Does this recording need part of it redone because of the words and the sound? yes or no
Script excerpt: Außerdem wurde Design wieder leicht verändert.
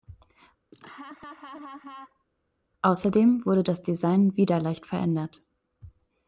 yes